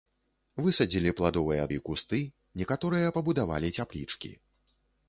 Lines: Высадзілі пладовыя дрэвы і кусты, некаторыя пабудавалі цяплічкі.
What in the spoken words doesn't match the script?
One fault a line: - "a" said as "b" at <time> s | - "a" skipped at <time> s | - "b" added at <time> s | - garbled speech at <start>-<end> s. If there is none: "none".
- "дрэвы" skipped at 1.6 s